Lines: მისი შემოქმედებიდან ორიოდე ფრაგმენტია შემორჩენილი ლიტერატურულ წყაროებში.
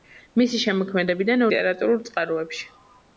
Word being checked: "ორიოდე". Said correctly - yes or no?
no